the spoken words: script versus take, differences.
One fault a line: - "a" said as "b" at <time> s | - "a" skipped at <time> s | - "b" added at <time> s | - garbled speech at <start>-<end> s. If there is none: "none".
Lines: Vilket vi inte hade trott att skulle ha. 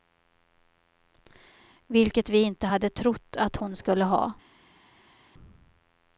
- "hon" added at 3.6 s